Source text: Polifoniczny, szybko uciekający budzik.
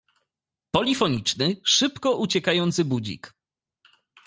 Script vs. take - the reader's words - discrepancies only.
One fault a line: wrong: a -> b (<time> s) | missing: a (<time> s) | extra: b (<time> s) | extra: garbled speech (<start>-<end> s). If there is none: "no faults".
no faults